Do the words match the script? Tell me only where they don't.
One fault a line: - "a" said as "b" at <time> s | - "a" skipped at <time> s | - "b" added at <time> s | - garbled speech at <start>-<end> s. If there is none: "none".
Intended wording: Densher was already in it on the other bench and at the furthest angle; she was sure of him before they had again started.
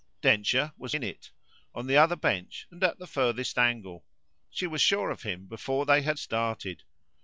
- "already" skipped at 0.9 s
- "again" skipped at 6.2 s